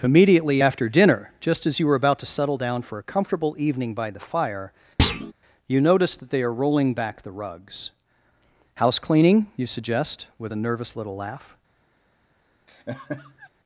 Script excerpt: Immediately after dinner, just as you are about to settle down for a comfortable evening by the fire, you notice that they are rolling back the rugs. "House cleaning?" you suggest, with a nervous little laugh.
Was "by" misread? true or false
false